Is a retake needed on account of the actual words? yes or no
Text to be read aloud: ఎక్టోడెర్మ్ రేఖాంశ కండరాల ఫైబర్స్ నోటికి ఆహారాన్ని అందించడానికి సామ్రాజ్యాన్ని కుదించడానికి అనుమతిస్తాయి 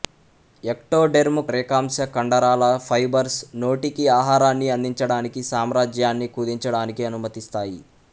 no